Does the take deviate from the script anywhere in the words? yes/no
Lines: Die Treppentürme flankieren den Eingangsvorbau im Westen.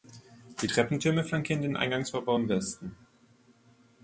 no